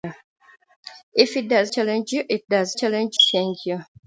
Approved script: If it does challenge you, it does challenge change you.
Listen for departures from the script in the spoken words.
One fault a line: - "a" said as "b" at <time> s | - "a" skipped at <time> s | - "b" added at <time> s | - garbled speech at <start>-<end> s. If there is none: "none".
none